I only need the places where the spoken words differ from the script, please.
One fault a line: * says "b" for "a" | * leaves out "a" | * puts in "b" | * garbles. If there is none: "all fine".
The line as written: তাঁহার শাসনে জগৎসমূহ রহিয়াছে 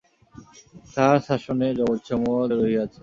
all fine